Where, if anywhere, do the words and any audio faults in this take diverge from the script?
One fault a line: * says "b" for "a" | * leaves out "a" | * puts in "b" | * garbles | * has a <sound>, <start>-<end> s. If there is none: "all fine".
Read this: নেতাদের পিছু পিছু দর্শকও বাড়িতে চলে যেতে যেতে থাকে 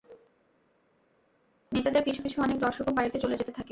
* puts in "অনেক"
* leaves out "যেতে"